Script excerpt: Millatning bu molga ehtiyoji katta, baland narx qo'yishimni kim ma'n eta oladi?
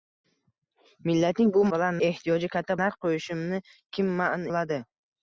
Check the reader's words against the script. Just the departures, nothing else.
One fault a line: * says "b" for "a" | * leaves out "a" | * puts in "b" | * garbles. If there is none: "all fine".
* says "baland" for "molga"
* leaves out "baland"
* leaves out "eta"